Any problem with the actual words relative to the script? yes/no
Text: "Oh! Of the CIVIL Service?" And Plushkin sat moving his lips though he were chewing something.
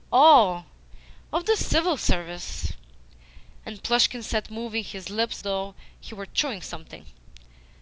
no